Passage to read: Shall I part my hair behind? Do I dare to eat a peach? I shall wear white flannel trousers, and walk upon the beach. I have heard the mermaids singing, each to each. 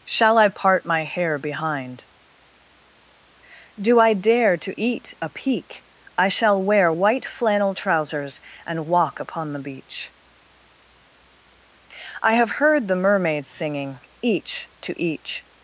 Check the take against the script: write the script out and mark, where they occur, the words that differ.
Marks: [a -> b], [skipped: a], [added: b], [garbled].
Shall I part my hair behind? Do I dare to eat a [peach? -> peak] I shall wear white flannel trousers, and walk upon the beach. I have heard the mermaids singing, each to each.